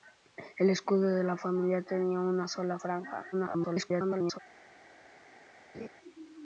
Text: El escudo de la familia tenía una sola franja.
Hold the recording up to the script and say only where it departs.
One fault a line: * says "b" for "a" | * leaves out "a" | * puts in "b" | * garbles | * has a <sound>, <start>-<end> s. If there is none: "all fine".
* garbles
* has a laugh, 5.7-5.9 s